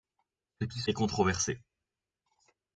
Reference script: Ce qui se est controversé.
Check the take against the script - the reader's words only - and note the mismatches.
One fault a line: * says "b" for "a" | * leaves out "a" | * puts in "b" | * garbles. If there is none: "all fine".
all fine